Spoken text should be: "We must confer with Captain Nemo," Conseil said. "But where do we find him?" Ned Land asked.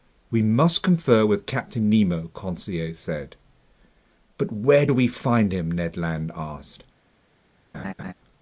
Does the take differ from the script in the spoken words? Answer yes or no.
no